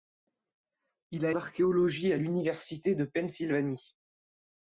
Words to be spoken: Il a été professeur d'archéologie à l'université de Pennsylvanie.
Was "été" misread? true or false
true